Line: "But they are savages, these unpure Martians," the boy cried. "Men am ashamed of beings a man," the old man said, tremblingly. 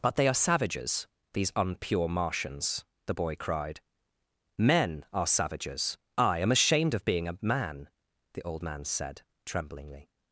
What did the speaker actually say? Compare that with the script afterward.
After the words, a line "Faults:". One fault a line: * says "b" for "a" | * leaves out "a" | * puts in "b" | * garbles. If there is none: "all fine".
"But they are savages, these unpure Martians," the boy cried. "Men are savages. I am ashamed of being a man," the old man said, tremblingly.
Faults:
* puts in "are savages I"
* says "being" for "beings"